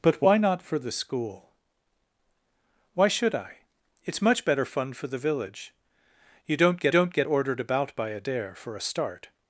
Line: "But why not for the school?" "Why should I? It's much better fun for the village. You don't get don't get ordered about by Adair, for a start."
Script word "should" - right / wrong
right